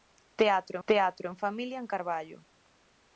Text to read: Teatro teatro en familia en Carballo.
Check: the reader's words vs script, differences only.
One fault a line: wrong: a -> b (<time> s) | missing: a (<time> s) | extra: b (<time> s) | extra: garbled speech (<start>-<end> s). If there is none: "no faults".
no faults